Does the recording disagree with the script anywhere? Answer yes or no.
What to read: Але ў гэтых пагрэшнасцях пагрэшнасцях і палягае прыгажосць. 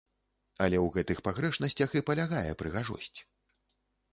yes